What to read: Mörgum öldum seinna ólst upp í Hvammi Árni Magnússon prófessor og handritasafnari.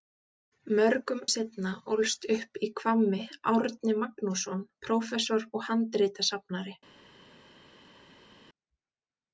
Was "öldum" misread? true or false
true